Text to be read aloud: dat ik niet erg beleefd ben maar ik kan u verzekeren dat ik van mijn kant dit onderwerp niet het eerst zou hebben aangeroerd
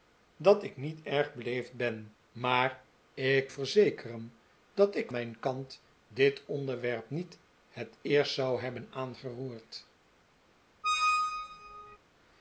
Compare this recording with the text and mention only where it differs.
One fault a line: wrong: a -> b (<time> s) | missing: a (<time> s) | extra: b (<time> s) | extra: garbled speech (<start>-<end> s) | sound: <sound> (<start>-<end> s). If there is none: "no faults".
missing: kan u (3.5 s)
missing: van (5.1 s)
sound: squeak (10.8-12.0 s)